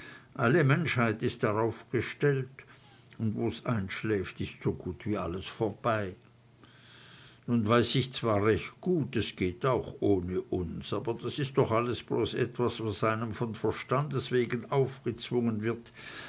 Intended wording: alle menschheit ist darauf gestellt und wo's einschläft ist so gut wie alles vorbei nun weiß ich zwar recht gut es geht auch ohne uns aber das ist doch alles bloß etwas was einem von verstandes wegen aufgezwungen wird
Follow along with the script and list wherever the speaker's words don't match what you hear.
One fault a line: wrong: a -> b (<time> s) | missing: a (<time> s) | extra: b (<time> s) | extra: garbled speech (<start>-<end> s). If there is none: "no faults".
no faults